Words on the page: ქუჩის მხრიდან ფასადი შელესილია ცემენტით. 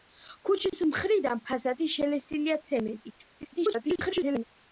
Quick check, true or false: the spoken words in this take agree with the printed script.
false